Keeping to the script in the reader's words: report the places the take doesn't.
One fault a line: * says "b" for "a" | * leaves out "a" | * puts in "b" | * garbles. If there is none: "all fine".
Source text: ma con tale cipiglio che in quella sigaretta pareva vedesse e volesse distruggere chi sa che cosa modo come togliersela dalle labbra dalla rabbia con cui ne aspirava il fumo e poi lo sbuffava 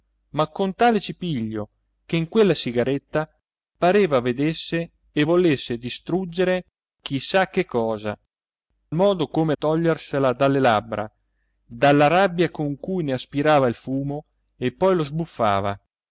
all fine